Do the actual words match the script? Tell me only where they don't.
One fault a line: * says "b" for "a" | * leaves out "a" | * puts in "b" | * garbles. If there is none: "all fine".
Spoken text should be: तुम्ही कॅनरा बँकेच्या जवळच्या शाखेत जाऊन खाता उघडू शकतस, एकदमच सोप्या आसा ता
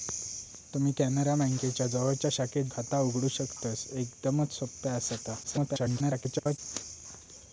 * leaves out "जाऊन"
* garbles